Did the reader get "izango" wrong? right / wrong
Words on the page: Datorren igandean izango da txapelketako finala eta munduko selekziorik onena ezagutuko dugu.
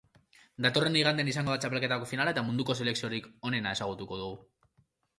right